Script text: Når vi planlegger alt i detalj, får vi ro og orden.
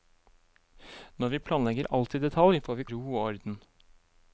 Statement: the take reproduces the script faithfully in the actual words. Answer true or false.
true